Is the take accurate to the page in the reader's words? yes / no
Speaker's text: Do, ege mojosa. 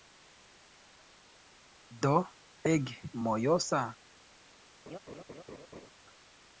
yes